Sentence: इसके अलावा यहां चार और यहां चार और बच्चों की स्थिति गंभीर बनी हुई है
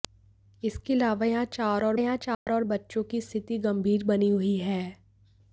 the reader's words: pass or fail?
pass